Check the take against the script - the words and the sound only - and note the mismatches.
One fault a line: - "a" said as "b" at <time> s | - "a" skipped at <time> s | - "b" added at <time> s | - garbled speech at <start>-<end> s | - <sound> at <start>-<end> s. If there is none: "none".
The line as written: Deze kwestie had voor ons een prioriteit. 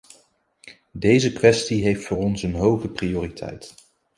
- "had" said as "heeft" at 1.8 s
- "hoge" added at 2.5 s